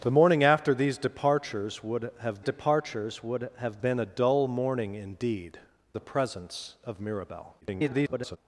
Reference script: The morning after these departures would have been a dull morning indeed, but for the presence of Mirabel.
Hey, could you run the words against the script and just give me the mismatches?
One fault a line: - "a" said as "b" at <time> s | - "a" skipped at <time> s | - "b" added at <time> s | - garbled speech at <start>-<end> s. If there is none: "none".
- "departures would have" added at 2.4 s
- "but for" skipped at 5.6 s
- garbled speech at 7.6-8.4 s